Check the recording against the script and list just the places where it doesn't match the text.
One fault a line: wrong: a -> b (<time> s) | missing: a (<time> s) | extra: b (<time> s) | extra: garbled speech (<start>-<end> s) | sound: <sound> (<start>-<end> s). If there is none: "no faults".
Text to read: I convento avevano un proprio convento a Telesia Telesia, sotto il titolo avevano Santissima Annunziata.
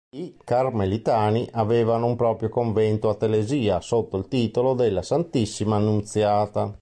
wrong: convento -> carmelitani (0.4 s)
missing: Telesia (3.8 s)
wrong: avevano -> della (4.7 s)